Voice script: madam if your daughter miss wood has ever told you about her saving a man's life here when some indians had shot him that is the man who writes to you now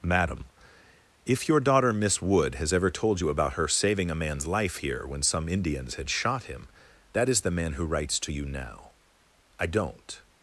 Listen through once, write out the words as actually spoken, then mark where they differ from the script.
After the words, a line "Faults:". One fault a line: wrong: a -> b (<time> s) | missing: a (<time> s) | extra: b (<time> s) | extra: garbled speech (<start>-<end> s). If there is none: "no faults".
madam if your daughter miss wood has ever told you about her saving a man's life here when some indians had shot him that is the man who writes to you now i don't
Faults:
extra: i don't (9.6 s)